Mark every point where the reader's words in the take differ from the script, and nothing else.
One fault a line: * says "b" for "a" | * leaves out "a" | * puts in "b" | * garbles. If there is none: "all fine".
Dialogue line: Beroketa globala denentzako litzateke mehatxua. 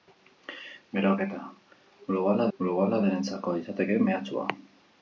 * puts in "globala"